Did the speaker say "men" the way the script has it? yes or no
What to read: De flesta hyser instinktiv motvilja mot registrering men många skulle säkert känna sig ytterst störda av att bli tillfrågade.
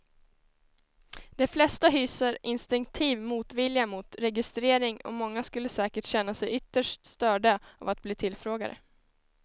no